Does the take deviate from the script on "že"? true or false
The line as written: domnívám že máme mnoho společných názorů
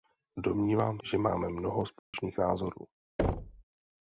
false